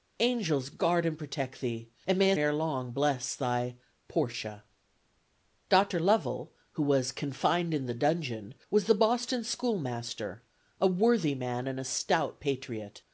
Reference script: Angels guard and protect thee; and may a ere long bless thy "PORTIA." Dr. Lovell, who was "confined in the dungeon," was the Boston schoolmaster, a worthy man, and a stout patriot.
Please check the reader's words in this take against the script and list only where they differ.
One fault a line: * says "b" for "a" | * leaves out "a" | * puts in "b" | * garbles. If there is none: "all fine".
all fine